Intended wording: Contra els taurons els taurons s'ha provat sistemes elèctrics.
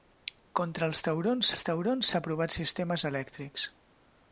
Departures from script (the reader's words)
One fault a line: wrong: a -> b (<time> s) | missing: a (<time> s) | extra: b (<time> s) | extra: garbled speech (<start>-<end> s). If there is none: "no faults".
no faults